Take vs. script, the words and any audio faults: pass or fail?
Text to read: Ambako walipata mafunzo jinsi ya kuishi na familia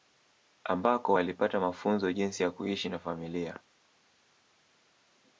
pass